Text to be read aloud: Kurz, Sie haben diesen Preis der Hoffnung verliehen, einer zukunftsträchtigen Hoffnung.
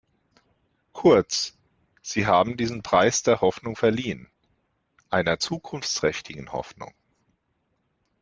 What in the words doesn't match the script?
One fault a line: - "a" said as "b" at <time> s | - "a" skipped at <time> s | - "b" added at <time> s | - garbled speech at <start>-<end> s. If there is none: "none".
none